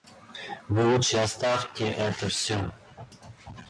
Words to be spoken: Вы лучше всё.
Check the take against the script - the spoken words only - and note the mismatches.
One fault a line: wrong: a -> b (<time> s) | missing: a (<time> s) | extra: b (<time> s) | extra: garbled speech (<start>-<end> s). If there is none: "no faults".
extra: оставьте это (1.1 s)